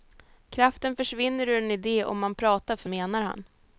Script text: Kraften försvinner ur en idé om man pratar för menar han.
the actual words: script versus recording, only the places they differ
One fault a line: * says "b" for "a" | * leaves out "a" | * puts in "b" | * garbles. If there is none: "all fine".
all fine